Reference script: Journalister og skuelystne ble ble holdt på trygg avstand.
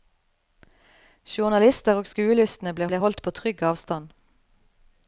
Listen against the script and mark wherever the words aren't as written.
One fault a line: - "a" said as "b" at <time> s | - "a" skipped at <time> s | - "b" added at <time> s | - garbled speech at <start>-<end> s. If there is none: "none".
none